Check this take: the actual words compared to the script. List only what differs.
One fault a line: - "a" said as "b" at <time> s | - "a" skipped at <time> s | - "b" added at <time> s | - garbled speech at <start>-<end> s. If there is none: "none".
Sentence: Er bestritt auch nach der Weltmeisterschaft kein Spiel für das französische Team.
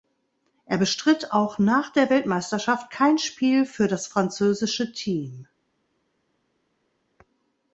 none